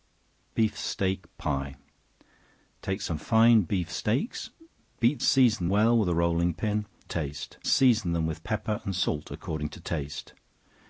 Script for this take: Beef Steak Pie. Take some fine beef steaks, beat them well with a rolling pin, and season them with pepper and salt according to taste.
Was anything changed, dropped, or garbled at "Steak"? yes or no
no